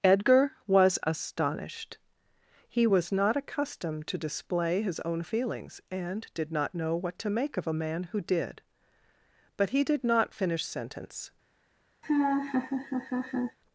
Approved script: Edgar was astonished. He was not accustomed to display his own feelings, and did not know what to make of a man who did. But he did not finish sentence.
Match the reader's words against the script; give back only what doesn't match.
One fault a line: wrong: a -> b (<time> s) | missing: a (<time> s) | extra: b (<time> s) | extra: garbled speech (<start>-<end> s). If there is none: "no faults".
no faults